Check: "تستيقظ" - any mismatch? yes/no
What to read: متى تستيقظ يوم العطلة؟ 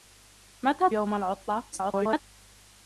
yes